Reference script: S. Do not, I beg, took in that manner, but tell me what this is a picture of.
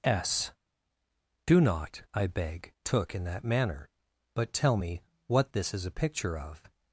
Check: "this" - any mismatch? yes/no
no